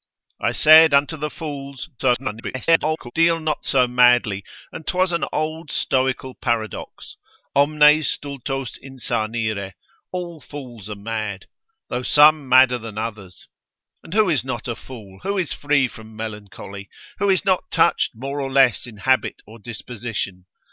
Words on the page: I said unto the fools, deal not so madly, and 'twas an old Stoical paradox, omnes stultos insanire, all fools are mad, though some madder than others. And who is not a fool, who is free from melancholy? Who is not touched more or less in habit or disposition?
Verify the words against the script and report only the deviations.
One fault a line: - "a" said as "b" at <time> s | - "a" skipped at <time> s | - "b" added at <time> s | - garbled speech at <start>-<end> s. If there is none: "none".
- garbled speech at 2.0-3.1 s